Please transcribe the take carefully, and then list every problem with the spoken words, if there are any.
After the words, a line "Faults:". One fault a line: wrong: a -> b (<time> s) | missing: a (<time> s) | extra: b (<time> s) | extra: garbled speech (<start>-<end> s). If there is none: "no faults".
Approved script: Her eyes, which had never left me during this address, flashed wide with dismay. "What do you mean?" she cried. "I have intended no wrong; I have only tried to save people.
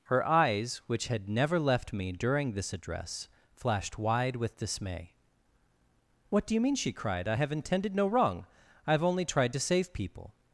Her eyes, which had never left me during this address, flashed wide with dismay. "What do you mean?" she cried. "I have intended no wrong; I have only tried to save people.
Faults:
no faults